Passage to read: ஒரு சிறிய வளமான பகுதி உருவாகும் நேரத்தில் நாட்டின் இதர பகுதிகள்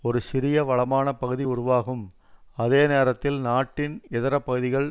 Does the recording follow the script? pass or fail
fail